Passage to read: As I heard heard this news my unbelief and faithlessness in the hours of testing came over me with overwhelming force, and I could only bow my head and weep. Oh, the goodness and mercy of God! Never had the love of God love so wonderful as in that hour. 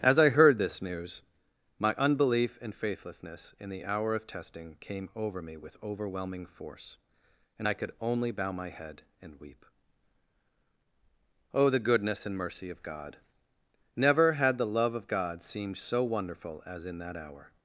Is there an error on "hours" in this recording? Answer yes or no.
yes